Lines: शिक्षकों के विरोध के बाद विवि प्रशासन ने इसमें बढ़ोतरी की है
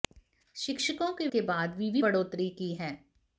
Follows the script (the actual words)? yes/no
no